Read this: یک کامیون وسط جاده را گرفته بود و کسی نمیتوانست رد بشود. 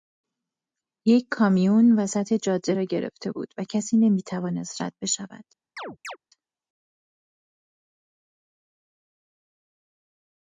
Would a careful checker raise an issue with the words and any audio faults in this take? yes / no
yes